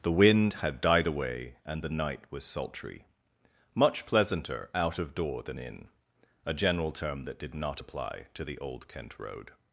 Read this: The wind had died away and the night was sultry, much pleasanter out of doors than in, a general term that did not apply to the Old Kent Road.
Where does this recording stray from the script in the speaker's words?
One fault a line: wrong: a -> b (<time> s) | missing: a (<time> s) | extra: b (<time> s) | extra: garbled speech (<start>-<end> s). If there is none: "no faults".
wrong: doors -> door (5.1 s)